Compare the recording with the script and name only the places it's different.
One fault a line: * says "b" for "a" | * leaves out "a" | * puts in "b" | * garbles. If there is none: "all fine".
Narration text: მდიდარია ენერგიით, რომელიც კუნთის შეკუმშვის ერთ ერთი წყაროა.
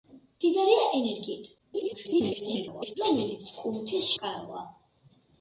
* garbles
* leaves out "შეკუმშვის ერთ ერთი"